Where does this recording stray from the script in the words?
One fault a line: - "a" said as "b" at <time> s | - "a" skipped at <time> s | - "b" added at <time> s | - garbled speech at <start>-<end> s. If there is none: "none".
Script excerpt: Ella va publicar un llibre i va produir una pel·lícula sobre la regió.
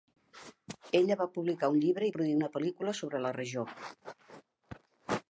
- "va" skipped at 2.1 s